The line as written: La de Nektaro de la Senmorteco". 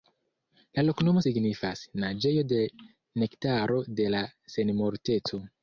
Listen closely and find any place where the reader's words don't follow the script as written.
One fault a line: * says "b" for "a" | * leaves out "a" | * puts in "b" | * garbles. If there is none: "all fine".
* puts in "loknomo signifas Naĝejo"